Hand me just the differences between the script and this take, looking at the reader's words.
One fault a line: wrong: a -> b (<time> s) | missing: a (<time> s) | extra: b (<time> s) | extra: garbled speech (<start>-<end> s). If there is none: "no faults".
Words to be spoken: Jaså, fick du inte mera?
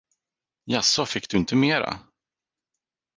no faults